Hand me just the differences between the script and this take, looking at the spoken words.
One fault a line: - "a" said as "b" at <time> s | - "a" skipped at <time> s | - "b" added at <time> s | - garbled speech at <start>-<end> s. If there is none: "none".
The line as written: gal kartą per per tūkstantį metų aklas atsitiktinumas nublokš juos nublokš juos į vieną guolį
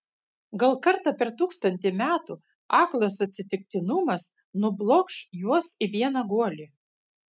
- "per" skipped at 1.3 s
- "nublokš juos" skipped at 5.7 s